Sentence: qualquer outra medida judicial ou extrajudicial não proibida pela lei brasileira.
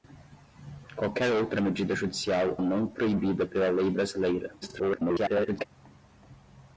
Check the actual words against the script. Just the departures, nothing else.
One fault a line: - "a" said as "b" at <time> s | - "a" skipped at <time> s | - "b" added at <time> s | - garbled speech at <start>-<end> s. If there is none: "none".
- "ou extrajudicial" skipped at 2.6 s
- garbled speech at 4.6-5.7 s